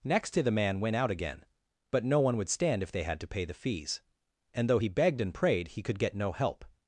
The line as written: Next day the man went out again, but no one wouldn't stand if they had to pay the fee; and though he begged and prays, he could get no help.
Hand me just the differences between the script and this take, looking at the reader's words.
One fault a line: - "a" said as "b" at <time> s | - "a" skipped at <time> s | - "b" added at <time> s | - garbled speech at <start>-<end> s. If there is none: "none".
- "wouldn't" said as "would" at 2.4 s
- "fee" said as "fees" at 3.5 s
- "prays" said as "prayed" at 5.3 s